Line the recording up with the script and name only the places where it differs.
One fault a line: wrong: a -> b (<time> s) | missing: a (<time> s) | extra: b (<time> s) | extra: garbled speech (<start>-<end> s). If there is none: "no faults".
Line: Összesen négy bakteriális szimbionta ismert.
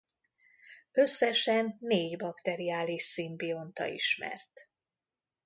no faults